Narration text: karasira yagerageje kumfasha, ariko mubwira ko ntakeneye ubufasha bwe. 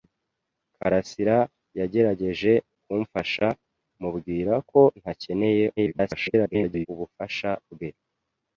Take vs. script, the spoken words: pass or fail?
fail